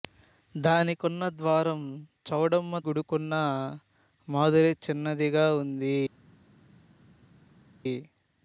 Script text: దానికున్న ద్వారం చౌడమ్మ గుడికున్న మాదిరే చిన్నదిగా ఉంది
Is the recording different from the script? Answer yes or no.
no